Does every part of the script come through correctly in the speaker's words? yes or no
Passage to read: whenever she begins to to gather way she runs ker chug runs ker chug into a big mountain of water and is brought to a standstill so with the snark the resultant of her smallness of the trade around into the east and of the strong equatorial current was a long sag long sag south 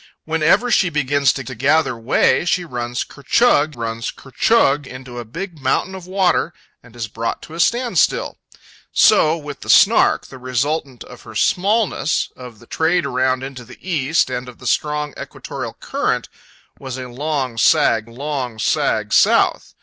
yes